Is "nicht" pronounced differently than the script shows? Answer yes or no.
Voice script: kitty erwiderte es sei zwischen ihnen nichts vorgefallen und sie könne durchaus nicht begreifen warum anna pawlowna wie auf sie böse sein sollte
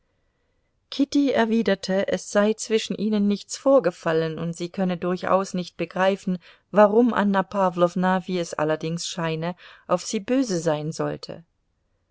no